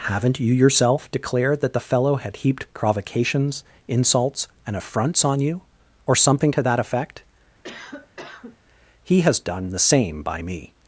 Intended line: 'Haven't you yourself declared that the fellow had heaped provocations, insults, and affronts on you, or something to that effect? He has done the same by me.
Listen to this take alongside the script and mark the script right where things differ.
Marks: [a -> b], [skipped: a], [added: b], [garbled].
'Haven't you yourself declared that the fellow had heaped provocations, insults, and affronts on you, or something to that effect? He has done the same by me.